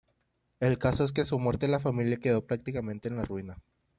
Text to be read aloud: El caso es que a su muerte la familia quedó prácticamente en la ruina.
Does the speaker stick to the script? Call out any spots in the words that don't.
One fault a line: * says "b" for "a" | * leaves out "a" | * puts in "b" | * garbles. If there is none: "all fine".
all fine